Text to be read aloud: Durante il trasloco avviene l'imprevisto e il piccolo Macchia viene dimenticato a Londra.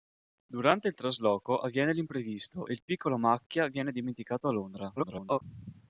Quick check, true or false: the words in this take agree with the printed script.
false